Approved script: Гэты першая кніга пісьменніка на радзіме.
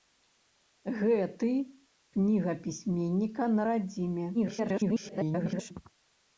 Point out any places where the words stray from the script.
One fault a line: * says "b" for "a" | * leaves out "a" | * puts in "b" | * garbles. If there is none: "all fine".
* leaves out "першая"
* garbles